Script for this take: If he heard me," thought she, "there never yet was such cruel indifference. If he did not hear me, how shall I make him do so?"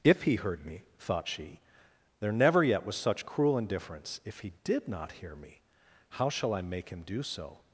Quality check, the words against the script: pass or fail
pass